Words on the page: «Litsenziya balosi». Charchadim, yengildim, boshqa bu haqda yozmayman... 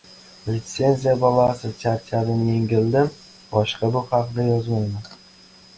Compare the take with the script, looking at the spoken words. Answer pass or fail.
pass